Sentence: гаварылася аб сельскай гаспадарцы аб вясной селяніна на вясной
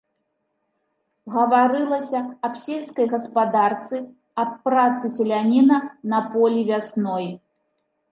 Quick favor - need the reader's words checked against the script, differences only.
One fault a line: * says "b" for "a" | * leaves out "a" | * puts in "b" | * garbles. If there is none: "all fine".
* says "працы" for "вясной"
* puts in "полі"